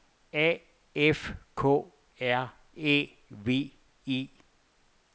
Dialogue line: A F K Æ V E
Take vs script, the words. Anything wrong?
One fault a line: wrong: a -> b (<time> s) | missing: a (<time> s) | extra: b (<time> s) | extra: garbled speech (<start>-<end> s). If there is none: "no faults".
extra: R (2.2 s)